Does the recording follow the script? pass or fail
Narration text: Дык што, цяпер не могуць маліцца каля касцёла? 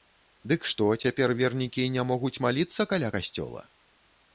fail